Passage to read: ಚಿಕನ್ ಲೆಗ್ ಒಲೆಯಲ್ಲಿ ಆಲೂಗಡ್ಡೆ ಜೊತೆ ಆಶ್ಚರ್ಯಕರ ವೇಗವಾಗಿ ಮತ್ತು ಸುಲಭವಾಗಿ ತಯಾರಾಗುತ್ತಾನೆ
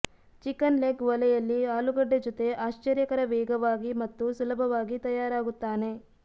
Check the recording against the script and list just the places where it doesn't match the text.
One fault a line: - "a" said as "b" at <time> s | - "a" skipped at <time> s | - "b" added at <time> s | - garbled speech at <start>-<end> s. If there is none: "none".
none